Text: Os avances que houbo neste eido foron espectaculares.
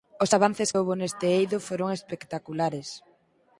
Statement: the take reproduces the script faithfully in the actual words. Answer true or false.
false